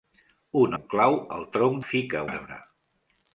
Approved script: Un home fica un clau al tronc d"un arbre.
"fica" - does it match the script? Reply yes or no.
no